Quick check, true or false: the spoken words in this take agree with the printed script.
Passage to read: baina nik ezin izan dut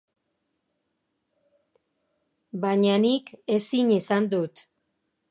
true